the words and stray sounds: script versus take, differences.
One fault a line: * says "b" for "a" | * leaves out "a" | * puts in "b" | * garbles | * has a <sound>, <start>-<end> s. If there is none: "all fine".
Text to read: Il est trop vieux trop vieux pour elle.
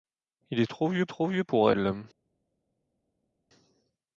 all fine